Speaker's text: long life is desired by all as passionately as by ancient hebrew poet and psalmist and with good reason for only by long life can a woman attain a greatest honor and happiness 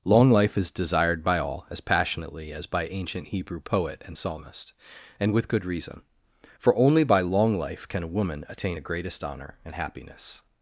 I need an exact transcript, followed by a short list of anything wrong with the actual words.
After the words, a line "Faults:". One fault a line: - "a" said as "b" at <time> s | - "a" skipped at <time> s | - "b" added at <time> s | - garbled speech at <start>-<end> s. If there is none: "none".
long life is desired by all as passionately as by ancient hebrew poet and psalmist and with good reason for only by long life can a woman attain a greatest honor and happiness
Faults:
none